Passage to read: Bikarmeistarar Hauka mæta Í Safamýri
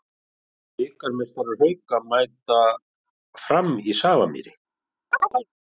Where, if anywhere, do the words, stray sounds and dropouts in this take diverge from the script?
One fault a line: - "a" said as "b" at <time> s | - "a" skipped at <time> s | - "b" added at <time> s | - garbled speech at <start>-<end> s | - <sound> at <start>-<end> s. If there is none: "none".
- "Fram" added at 3.5 s
- chirp at 5.1-5.5 s